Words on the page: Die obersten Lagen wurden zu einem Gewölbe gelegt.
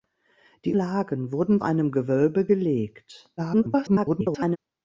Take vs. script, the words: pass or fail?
fail